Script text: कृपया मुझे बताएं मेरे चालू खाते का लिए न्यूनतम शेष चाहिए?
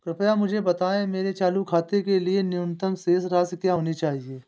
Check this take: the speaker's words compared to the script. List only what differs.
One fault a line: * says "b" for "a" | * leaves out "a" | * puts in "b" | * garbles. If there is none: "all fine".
* says "के" for "का"
* puts in "राशि क्या होनी"